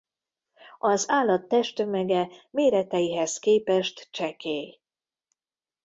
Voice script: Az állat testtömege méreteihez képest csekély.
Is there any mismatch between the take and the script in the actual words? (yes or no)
no